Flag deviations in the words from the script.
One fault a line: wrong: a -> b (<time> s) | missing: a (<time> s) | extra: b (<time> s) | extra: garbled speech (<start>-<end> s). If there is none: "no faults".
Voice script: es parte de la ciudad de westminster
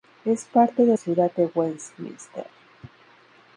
missing: la (1.0 s)